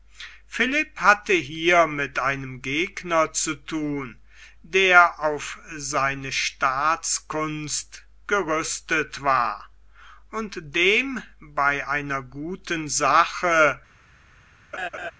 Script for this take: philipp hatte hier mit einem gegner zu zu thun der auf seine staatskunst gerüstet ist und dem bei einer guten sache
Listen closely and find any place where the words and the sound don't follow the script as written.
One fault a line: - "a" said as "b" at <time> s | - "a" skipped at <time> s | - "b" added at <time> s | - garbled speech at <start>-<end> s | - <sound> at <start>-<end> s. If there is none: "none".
- "zu" skipped at 3.5 s
- "ist" said as "war" at 9.2 s
- laugh at 14.7-15.1 s